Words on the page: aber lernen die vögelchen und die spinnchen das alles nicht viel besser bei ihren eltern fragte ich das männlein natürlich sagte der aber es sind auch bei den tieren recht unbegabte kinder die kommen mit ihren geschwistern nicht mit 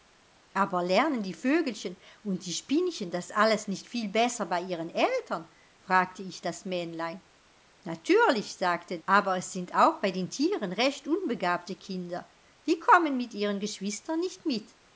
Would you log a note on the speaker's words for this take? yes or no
yes